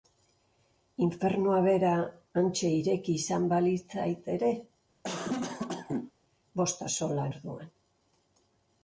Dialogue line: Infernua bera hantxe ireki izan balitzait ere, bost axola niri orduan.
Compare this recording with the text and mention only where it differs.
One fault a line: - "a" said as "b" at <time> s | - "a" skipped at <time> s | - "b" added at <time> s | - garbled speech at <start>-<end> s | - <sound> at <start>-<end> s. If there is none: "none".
- cough at 5.0-6.1 s
- "niri" skipped at 7.3 s